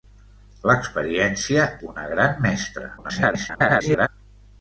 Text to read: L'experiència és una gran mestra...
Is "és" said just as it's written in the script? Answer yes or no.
no